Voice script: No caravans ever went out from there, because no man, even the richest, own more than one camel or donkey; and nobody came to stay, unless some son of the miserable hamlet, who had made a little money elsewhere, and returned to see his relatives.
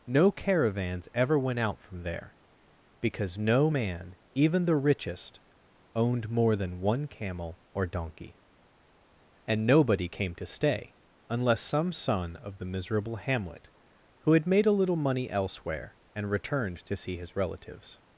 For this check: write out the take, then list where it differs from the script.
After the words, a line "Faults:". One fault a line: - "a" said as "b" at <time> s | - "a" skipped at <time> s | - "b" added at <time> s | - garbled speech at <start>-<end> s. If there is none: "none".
No caravans ever went out from there, because no man, even the richest, owned more than one camel or donkey; and nobody came to stay, unless some son of the miserable hamlet, who had made a little money elsewhere, and returned to see his relatives.
Faults:
- "own" said as "owned" at 5.9 s